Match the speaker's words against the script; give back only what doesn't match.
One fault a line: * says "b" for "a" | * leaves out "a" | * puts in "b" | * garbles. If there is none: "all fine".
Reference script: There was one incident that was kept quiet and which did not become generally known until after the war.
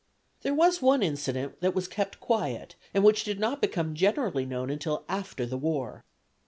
all fine